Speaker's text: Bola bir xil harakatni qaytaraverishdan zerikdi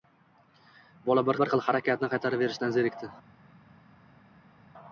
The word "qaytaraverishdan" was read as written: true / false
true